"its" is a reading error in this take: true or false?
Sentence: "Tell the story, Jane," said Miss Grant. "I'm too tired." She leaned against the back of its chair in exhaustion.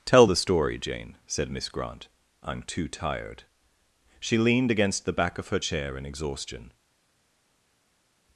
true